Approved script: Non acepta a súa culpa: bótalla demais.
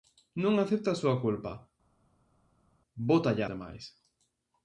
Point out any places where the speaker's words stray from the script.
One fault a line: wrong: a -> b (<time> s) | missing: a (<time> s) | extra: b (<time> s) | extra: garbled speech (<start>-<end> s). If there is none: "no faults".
no faults